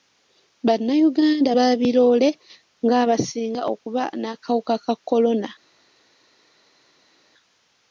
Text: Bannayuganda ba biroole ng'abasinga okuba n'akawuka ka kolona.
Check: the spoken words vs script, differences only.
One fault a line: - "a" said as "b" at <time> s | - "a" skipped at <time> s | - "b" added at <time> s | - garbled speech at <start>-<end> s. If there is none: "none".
none